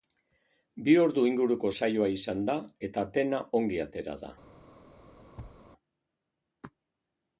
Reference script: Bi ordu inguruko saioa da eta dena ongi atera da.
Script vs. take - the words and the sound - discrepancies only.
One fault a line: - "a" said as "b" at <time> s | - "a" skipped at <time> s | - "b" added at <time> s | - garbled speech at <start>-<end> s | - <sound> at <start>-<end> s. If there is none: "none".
- "izan" added at 2.1 s
- thud at 5.4-5.6 s